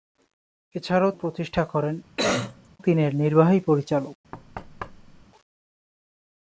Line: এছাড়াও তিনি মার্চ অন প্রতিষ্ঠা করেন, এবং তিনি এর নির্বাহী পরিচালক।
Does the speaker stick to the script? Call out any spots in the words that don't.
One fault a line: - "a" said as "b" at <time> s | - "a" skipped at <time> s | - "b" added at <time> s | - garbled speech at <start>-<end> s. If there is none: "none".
- "তিনি মার্চ অন" skipped at 1.1 s
- "এবং" skipped at 1.9 s